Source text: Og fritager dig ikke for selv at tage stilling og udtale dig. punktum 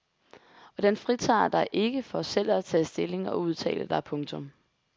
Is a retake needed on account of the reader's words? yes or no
yes